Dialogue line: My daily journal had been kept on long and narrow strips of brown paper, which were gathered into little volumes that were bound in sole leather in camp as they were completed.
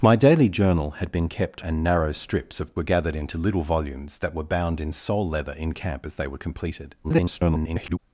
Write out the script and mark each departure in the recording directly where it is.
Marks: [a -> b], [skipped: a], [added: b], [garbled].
My daily journal had been kept [skipped: on long] and narrow strips of [skipped: brown paper, which] were gathered into little volumes that were bound in sole leather in camp as they were completed. [garbled]